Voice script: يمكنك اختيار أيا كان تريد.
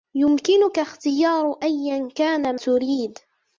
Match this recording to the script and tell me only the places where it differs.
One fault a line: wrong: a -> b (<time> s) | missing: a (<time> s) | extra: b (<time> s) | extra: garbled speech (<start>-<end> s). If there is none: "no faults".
no faults